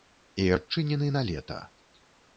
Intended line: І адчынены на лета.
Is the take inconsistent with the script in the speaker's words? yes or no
no